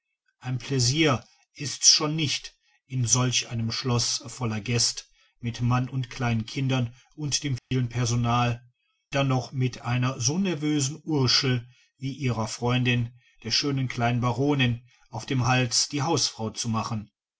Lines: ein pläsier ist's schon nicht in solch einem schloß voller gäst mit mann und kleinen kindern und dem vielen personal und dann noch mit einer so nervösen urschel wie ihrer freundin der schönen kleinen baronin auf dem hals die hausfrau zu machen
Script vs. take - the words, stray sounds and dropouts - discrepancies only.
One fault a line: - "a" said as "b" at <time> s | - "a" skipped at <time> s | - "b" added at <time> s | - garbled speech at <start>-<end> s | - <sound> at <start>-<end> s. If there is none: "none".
- dropout at 7.6-7.7 s
- "und" skipped at 8.7 s